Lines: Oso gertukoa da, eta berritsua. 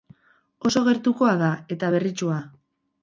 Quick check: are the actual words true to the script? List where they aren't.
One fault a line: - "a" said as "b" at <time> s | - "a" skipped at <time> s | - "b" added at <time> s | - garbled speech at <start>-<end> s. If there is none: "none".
none